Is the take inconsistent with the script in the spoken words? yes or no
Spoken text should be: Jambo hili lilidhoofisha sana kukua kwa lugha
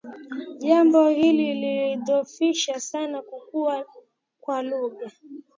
no